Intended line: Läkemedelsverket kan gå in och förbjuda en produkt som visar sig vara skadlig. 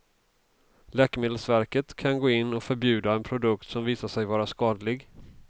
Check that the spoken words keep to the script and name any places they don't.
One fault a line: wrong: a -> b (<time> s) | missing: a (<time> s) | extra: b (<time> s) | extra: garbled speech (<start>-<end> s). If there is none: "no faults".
no faults